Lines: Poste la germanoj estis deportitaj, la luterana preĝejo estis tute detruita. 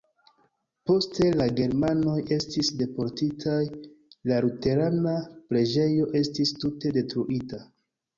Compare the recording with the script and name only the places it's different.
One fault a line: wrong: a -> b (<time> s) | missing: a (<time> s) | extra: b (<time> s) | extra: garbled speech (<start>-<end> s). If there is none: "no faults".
no faults